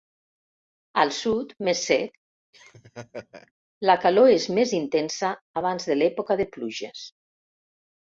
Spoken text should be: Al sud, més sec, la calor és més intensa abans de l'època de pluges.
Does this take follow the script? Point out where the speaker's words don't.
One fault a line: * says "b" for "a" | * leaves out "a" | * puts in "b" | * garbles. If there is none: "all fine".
all fine